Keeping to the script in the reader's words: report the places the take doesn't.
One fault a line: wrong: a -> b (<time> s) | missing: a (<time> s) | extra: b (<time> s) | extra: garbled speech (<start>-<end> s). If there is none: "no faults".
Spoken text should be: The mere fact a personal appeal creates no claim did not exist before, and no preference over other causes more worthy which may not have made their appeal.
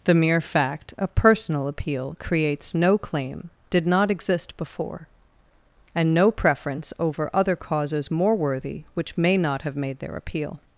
no faults